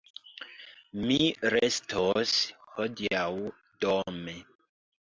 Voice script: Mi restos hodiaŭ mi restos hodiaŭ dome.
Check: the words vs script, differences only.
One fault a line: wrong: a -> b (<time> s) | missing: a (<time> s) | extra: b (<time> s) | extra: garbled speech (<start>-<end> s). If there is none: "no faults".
missing: mi restos hodiaŭ (3.3 s)